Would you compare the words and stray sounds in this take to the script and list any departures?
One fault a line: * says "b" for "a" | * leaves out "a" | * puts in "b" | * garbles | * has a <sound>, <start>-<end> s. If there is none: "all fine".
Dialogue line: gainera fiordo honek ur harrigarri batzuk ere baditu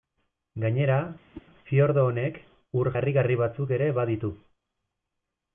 * has a whoosh, 1.3-1.5 s